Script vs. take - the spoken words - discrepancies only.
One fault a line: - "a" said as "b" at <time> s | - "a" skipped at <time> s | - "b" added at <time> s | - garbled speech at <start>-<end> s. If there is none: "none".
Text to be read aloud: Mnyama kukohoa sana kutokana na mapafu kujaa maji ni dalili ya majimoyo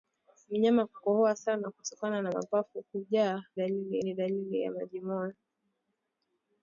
- "maji" said as "dalili" at 3.5 s